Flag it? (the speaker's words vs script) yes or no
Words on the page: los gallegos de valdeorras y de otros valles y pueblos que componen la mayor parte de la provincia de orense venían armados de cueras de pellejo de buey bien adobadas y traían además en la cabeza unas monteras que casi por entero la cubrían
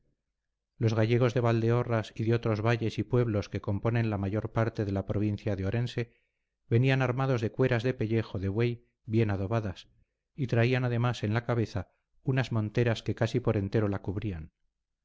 no